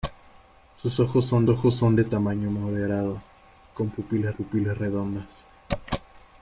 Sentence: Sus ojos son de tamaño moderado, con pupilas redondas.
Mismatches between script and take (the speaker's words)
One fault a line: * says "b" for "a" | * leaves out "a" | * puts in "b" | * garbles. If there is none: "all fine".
* puts in "ojos son"
* puts in "pupilas"